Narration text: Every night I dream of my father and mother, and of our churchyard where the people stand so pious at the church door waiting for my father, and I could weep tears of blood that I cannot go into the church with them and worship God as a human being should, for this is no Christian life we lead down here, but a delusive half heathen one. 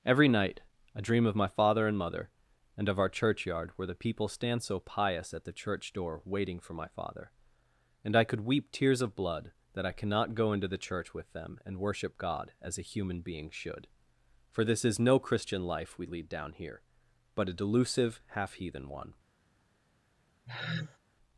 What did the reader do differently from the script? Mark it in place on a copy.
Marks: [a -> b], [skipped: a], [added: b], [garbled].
Every night I dream of my father and mother, and of our churchyard where the people stand so pious at the church door waiting for my father, and I could weep tears of blood that I cannot go into the church with them and worship God as a human being should, for this is no Christian life we lead down here, but a delusive half heathen one.